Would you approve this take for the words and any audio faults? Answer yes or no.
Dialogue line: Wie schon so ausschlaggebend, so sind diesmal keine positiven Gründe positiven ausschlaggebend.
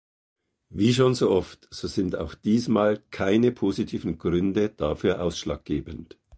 no